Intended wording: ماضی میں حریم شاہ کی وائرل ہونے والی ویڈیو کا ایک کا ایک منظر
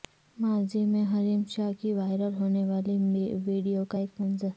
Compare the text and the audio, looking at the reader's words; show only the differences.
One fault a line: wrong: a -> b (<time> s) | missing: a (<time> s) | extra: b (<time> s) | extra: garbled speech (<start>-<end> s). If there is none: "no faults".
missing: کا ایک (4.2 s)